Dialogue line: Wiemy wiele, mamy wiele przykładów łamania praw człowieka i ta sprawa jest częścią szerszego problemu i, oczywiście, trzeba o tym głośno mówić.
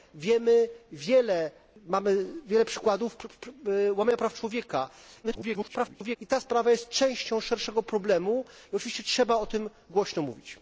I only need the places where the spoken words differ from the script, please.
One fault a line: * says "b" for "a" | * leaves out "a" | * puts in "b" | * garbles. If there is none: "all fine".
* garbles